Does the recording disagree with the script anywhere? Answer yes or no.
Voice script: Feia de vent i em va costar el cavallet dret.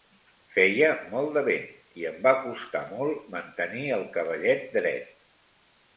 yes